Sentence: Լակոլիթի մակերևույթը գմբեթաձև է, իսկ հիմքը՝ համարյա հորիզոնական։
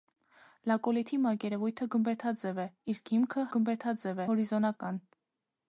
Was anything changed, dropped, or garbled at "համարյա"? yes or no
yes